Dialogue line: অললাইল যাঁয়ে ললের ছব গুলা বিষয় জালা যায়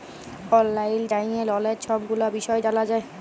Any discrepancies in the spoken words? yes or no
no